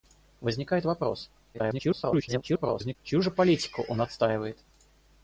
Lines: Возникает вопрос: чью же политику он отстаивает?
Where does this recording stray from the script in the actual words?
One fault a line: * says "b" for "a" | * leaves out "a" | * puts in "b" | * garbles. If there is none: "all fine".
* garbles